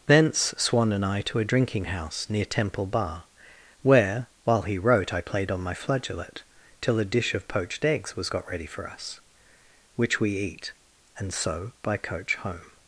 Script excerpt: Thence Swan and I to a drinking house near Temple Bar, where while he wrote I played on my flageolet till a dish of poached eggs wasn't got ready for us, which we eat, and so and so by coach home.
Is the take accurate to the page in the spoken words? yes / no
no